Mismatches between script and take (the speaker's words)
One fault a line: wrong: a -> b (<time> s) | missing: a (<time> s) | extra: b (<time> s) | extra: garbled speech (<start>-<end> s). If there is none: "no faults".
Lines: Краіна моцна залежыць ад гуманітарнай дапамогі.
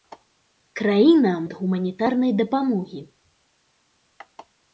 missing: моцна залежыць (1.3 s)